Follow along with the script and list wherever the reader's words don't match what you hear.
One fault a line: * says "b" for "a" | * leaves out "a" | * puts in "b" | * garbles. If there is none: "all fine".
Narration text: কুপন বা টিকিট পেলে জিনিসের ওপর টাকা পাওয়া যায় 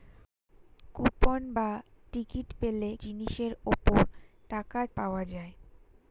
all fine